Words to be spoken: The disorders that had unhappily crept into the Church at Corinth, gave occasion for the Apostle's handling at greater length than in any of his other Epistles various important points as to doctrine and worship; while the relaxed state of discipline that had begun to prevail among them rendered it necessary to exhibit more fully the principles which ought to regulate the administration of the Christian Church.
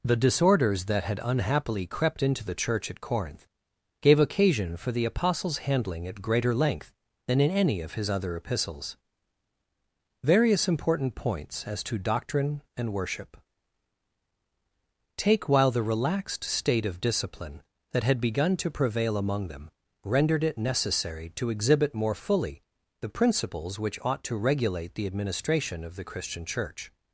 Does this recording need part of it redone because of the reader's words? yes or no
yes